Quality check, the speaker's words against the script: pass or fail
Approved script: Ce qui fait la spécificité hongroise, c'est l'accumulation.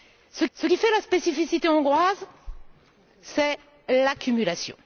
fail